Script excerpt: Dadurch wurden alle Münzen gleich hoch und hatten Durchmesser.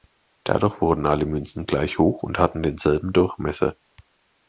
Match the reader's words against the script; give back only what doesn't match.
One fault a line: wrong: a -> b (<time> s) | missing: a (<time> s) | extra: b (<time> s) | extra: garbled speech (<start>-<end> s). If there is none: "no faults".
extra: denselben (2.6 s)